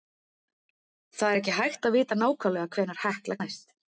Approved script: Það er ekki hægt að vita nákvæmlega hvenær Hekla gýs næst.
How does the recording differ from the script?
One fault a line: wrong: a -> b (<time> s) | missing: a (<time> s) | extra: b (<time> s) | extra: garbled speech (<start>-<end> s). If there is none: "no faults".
missing: gýs (3.4 s)